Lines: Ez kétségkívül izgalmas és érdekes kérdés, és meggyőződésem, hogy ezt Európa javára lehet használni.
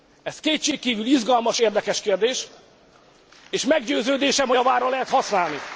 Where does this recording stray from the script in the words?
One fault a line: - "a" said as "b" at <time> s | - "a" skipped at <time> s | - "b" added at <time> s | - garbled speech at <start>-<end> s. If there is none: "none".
- "és" skipped at 1.6 s
- "ezt Európa" skipped at 4.6 s